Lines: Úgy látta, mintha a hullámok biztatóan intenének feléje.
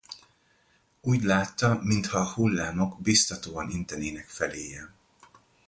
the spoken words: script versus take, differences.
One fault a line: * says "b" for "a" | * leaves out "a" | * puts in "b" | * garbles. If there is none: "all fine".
all fine